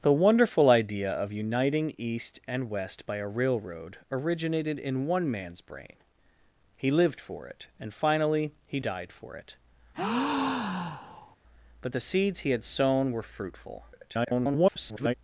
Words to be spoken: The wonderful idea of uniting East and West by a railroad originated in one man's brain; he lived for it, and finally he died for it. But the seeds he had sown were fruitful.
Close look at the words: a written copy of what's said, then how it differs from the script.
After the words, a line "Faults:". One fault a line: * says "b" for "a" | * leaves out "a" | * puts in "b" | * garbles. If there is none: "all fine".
The wonderful idea of uniting East and West by a railroad originated in one man's brain; he lived for it, and finally he died for it. But the seeds he had sown were fruitful. [garbled]
Faults:
* garbles